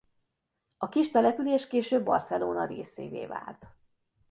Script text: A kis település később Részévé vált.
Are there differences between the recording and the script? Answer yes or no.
yes